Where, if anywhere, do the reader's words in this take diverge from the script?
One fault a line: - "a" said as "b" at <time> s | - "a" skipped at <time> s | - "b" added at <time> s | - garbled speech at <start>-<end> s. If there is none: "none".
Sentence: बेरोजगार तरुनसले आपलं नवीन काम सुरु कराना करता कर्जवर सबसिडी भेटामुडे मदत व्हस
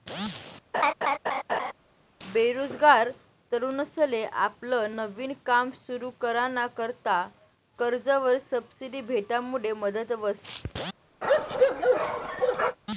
none